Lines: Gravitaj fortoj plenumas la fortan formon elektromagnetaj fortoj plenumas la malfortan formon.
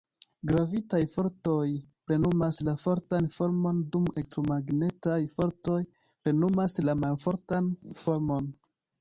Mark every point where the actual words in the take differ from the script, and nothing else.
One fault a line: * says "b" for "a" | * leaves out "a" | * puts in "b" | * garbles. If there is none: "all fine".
* puts in "dum"